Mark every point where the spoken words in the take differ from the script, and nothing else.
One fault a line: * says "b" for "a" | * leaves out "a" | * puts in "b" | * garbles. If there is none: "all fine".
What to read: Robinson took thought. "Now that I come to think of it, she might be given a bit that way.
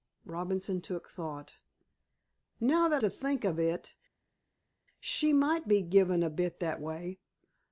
* leaves out "I come"